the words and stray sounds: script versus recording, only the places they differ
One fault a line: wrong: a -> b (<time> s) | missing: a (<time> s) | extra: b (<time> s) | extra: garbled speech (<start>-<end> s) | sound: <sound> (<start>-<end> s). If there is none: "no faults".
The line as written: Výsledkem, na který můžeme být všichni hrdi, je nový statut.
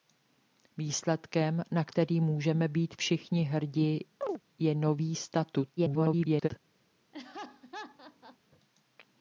sound: chirp (4.2-4.4 s)
extra: garbled speech (5.8-6.5 s)
sound: laugh (7.1-8.4 s)